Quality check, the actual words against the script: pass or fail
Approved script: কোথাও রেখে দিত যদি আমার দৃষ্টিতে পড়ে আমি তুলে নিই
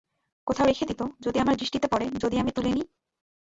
fail